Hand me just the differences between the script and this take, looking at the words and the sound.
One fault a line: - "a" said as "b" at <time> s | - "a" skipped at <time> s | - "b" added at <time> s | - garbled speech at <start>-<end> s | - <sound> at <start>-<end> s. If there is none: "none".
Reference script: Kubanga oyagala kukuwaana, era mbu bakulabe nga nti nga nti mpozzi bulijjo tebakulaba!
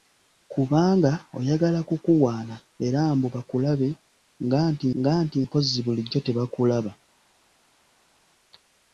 none